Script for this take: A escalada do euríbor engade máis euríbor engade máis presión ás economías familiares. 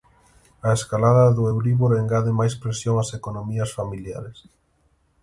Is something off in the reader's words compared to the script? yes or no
yes